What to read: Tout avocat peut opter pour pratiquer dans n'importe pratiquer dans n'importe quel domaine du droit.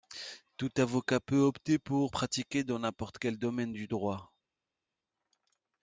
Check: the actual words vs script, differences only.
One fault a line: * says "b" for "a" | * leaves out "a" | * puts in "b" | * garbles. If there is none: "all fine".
* leaves out "pratiquer dans n'importe"